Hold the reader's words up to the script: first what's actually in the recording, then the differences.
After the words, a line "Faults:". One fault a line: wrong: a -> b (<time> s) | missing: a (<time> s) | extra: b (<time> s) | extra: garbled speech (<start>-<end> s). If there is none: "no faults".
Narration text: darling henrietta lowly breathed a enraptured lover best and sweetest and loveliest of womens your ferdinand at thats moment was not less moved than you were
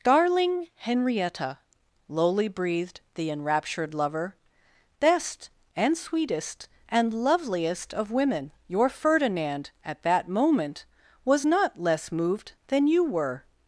darling henrietta lowly breathed the enraptured lover best and sweetest and loveliest of women your ferdinand at that moment was not less moved than you were
Faults:
wrong: a -> the (3.1 s)
wrong: womens -> women (8.1 s)
wrong: thats -> that (10.0 s)